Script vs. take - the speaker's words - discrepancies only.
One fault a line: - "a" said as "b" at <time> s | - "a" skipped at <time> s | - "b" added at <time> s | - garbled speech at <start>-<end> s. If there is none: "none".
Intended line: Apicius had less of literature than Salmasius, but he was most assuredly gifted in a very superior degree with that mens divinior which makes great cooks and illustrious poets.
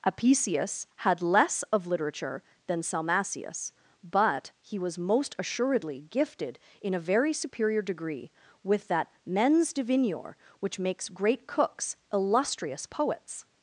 - "and" skipped at 12.0 s